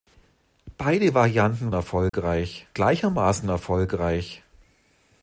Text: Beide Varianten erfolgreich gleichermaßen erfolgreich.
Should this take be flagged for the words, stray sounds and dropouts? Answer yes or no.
yes